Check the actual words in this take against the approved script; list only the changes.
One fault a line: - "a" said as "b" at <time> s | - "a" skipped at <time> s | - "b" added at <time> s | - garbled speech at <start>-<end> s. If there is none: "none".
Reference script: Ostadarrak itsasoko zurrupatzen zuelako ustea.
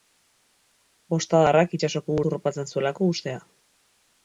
none